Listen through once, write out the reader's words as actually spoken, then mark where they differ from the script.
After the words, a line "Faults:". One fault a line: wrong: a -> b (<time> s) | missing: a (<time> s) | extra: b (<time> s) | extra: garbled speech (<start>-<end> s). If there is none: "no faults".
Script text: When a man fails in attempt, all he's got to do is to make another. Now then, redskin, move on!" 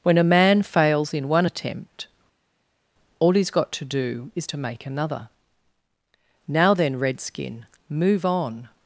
When a man fails in one attempt, all he's got to do is to make another. Now then, redskin, move on!"
Faults:
extra: one (1.3 s)